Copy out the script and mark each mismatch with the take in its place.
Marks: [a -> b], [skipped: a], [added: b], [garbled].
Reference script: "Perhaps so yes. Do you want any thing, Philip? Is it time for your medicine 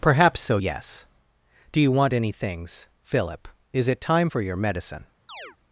"Perhaps so yes. Do you want any [thing, -> things] Philip? Is it time for your medicine